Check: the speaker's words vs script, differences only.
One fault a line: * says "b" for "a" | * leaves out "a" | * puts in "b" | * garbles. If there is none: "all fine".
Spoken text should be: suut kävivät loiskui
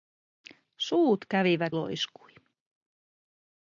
all fine